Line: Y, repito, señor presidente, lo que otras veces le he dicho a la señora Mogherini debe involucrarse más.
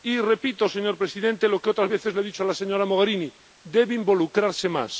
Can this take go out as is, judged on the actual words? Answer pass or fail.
pass